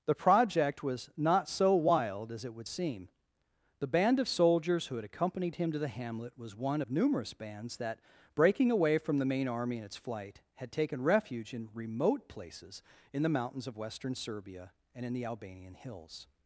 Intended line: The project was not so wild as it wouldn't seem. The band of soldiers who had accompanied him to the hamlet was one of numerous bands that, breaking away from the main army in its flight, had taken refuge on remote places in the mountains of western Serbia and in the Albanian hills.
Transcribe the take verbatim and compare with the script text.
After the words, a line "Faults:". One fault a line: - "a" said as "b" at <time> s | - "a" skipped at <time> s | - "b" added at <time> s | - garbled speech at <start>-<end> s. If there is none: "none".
The project was not so wild as it would seem. The band of soldiers who had accompanied him to the hamlet was one of numerous bands that, breaking away from the main army in its flight, had taken refuge in remote places in the mountains of western Serbia and in the Albanian hills.
Faults:
- "wouldn't" said as "would" at 2.5 s
- "on" said as "in" at 11.5 s